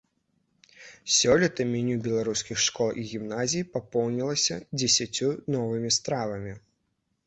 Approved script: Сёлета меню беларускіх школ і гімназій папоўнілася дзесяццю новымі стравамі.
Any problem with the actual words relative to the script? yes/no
no